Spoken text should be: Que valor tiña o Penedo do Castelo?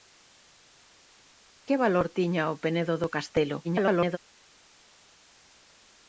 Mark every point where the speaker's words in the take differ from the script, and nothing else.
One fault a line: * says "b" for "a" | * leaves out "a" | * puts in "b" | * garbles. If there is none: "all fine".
* garbles